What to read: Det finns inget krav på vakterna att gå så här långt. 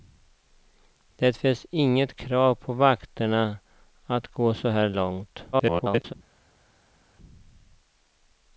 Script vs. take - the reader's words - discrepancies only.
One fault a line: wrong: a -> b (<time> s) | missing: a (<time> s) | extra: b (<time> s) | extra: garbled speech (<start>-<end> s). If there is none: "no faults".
extra: garbled speech (5.5-6.1 s)